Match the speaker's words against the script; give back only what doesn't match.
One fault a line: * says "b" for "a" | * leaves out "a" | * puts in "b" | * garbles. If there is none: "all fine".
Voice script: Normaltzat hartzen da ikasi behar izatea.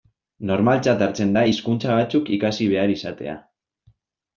* puts in "hizkuntza batzuk"